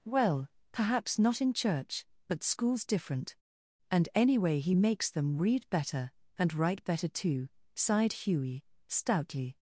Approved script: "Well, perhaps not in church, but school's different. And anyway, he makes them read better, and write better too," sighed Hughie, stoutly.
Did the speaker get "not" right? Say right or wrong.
right